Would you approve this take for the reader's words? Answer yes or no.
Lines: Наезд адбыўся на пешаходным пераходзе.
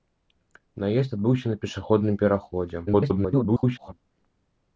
no